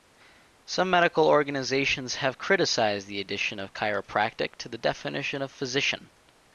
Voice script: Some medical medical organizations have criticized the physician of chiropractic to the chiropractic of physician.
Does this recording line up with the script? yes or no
no